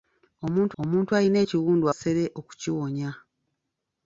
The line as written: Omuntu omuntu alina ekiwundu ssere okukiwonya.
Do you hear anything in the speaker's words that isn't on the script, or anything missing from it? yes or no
no